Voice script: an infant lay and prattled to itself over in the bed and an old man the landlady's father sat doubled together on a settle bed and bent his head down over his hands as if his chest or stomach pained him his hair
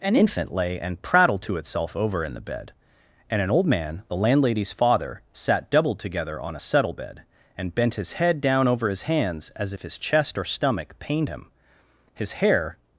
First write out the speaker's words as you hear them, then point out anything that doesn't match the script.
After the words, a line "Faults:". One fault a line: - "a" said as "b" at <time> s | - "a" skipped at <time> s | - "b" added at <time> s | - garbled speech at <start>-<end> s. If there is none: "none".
an infant lay and prattled to itself over in the bed and an old man the landlady's father sat doubled together on a settle bed and bent his head down over his hands as if his chest or stomach pained him his hair
Faults:
none